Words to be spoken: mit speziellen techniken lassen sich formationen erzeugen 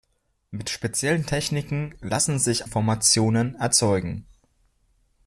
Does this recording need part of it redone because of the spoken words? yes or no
no